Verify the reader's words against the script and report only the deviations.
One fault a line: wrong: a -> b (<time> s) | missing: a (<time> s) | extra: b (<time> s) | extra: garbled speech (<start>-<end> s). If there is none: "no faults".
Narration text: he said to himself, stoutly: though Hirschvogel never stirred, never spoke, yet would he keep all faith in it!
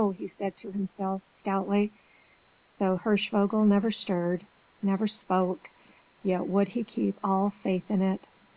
no faults